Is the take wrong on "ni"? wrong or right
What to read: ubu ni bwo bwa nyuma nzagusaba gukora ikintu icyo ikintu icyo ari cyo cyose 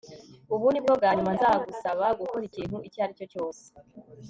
right